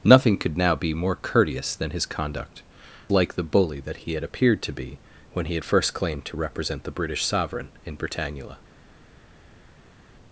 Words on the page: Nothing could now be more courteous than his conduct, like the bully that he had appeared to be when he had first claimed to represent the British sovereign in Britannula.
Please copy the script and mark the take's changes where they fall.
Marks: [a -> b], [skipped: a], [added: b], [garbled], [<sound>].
Nothing could now be more courteous than his conduct, like the bully that he had appeared to be when he had first claimed to represent the British sovereign in Britannula.